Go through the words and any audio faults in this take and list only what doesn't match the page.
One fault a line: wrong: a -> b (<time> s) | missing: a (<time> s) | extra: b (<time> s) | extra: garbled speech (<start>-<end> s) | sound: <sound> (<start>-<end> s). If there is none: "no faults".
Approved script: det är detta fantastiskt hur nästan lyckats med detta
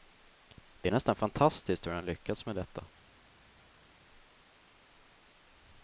wrong: detta -> nästan (0.9 s)
wrong: nästan -> han (1.9 s)